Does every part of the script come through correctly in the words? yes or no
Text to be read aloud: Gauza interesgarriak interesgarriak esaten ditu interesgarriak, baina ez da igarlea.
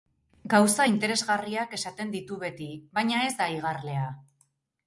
no